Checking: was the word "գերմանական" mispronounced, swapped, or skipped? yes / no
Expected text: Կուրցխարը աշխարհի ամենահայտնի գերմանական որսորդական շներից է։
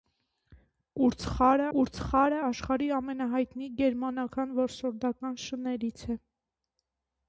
no